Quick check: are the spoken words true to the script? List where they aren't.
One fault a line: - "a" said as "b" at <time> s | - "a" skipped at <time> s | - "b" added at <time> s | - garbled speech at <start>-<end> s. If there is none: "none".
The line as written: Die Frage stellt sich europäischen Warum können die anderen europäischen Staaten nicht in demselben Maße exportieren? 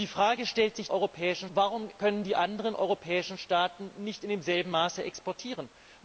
none